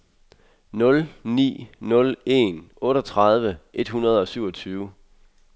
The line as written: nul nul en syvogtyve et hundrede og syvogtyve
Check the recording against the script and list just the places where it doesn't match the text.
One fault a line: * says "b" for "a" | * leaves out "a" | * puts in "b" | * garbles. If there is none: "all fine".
* puts in "ni"
* says "otteogtredive" for "syvogtyve"